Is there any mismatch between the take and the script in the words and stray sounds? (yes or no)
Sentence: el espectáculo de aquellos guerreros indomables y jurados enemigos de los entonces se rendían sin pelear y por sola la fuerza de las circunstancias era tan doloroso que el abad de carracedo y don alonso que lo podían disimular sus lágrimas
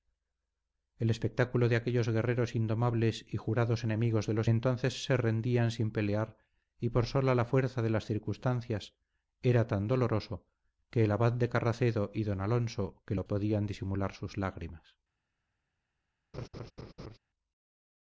yes